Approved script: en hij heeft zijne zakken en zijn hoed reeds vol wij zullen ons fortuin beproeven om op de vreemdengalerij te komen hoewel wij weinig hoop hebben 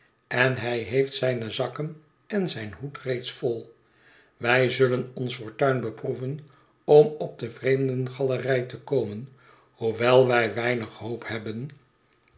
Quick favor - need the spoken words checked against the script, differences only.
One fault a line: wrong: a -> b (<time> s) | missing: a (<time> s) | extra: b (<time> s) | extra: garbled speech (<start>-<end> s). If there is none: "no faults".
no faults